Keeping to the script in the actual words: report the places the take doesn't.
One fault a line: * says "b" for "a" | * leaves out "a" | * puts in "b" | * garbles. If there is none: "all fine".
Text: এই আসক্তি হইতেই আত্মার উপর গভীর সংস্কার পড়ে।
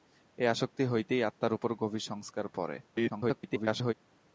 * garbles